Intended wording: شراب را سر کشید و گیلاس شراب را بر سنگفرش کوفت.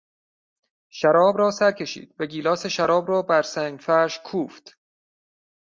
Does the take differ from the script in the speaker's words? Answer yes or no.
no